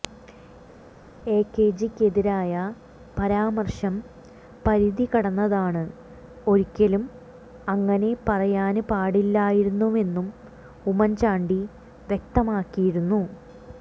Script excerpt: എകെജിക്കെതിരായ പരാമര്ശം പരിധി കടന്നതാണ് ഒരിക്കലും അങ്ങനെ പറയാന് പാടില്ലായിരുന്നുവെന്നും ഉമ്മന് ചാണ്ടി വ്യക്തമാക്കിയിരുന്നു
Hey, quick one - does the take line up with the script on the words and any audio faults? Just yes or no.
yes